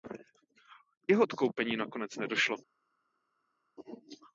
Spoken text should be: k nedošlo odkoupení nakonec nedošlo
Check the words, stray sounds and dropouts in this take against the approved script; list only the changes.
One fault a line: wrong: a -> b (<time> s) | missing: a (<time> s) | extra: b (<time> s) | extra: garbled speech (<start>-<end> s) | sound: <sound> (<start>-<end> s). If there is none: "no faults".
wrong: nedošlo -> jeho (1.1 s)